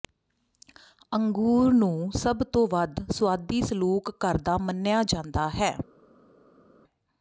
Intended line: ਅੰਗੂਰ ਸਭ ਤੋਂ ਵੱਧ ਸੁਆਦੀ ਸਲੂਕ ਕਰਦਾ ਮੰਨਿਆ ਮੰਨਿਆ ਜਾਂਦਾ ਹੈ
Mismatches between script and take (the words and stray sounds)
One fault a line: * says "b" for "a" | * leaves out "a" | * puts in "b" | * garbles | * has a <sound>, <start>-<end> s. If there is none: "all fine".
* puts in "ਨੂੰ"
* leaves out "ਮੰਨਿਆ"